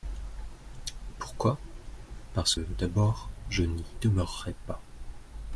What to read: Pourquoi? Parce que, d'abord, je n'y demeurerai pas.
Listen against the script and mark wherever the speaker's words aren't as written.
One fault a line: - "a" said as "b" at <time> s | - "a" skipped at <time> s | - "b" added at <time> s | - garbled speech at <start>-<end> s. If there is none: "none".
- "que" skipped at 2.5 s